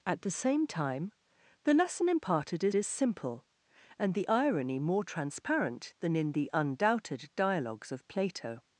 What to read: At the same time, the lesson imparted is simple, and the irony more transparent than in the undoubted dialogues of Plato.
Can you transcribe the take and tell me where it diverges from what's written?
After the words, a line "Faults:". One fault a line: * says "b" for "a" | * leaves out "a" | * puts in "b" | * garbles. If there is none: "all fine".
At the same time, the lesson imparted is is simple, and the irony more transparent than in the undoubted dialogues of Plato.
Faults:
* puts in "is"